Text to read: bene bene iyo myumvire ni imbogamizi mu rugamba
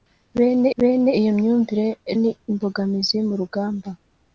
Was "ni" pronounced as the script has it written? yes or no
yes